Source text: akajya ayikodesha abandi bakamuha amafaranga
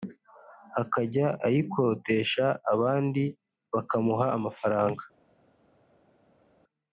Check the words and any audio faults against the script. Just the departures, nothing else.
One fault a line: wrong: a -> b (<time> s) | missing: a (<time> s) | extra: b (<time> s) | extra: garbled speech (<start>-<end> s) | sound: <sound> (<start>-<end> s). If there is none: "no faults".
no faults